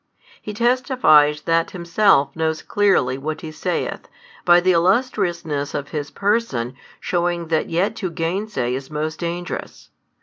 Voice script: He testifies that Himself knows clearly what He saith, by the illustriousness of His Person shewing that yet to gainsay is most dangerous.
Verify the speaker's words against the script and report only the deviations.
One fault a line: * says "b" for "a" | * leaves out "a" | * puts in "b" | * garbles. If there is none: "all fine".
all fine